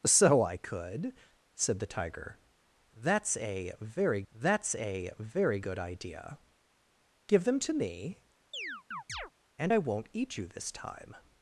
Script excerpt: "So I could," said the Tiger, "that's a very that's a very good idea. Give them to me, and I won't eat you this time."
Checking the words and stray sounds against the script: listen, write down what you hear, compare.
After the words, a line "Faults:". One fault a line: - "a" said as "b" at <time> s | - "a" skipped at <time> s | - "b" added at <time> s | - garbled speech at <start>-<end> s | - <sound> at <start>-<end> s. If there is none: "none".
"So I could," said the Tiger, "that's a very that's a very good idea. Give them to me, and I won't eat you this time."
Faults:
- chirp at 8.5-9.3 s